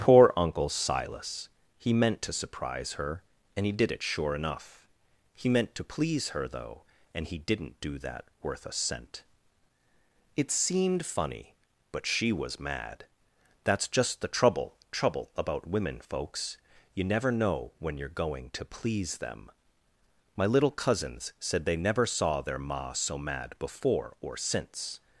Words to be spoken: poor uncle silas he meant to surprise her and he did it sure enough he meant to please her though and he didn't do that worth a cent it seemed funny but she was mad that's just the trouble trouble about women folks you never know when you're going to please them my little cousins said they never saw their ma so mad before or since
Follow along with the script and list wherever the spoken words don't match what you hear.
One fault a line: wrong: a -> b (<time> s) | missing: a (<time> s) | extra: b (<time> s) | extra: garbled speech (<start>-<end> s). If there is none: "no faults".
no faults